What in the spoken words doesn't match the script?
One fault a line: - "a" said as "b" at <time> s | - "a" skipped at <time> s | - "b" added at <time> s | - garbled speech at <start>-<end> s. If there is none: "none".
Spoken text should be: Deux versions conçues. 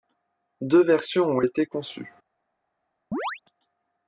- "ont été" added at 1.2 s